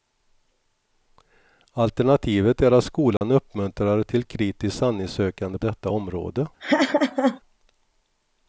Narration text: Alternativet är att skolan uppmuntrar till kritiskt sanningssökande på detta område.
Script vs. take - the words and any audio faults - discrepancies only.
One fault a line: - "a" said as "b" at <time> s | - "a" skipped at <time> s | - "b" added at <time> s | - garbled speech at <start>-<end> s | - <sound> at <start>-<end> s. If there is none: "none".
- dropout at 3.2-3.2 s
- "på" skipped at 5.6 s
- laugh at 6.6-7.4 s